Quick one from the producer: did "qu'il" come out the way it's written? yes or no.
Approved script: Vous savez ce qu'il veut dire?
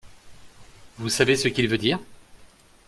yes